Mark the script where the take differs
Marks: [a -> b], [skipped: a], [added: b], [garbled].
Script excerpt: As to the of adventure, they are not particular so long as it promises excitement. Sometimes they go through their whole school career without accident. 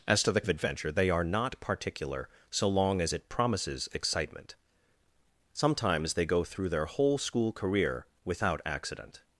As to the of adventure, they are not particular so long as it promises excitement. Sometimes they go through their whole school career without accident.